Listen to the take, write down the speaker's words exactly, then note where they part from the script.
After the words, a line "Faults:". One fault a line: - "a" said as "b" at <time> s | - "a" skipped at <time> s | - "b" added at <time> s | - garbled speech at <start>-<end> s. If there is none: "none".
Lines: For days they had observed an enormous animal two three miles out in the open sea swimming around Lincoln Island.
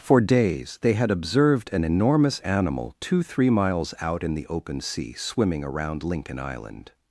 For days they had observed an enormous animal two three miles out in the open sea swimming around Lincoln Island.
Faults:
none